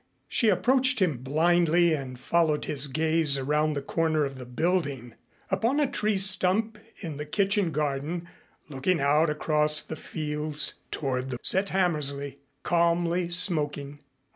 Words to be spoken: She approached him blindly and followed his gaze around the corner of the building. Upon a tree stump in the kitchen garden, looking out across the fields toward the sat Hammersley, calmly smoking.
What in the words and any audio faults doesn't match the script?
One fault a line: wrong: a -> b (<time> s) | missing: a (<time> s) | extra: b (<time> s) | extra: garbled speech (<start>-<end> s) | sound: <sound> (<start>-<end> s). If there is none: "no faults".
no faults